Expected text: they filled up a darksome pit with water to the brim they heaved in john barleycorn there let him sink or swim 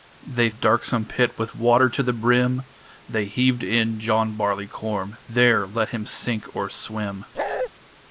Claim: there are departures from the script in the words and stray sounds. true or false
true